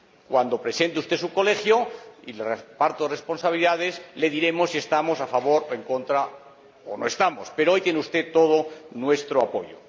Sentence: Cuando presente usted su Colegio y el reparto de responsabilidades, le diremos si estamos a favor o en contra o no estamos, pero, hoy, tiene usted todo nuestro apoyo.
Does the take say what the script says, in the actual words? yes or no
yes